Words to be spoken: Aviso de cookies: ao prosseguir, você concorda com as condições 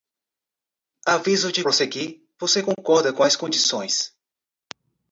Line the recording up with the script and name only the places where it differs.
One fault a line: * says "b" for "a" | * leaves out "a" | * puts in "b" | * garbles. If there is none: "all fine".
* leaves out "cookies ao"